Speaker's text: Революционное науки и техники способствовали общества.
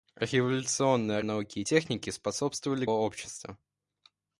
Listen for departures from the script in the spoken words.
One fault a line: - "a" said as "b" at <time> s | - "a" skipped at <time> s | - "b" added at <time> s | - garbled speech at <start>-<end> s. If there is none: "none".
none